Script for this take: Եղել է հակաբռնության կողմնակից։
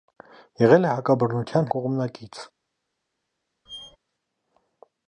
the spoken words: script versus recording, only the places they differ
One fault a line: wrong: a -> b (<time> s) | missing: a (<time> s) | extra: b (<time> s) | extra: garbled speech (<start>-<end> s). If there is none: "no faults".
no faults